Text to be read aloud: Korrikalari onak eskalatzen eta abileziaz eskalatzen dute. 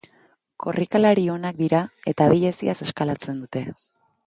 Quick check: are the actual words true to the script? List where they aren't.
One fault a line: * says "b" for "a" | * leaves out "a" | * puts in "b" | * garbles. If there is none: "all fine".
* says "dira" for "eskalatzen"